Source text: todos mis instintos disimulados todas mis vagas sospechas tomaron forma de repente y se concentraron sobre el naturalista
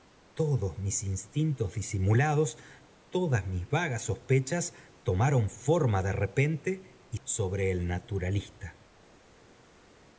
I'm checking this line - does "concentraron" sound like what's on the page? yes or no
no